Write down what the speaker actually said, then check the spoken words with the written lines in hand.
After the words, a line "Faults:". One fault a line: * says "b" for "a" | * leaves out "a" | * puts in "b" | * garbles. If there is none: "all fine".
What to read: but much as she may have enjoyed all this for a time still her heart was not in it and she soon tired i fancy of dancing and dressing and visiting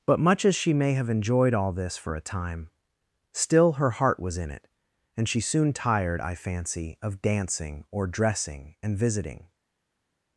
but much as she may have enjoyed all this for a time still her heart was in it and she soon tired i fancy of dancing or dressing and visiting
Faults:
* leaves out "not"
* says "or" for "and"